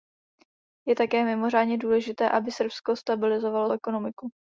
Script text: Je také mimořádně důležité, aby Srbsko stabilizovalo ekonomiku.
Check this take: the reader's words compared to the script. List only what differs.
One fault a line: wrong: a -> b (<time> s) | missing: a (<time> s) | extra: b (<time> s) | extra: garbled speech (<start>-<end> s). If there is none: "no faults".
no faults